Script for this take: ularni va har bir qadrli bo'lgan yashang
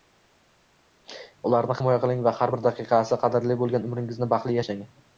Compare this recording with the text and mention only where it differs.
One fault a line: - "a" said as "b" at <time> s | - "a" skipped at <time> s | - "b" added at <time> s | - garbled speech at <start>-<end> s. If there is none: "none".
- "himoya qiling" added at 1.8 s
- "daqiqasi" added at 2.7 s
- "umringizni baxtli" added at 3.9 s